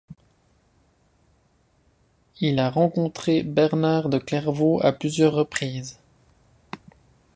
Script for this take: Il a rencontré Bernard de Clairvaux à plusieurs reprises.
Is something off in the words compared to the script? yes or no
no